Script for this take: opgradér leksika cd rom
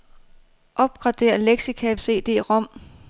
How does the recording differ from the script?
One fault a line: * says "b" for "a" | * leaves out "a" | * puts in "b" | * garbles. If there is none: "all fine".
all fine